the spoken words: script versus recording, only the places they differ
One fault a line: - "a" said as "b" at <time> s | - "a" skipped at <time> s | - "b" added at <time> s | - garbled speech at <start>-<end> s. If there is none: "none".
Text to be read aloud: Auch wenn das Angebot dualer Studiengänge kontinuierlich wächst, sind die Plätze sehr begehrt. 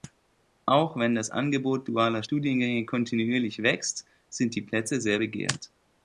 none